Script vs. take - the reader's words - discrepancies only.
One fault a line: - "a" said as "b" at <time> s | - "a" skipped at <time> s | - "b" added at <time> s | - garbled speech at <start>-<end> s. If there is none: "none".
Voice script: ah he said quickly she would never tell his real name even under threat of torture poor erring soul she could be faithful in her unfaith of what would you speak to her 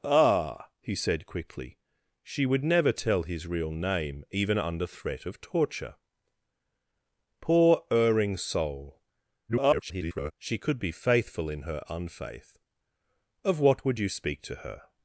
- garbled speech at 9.5-10.3 s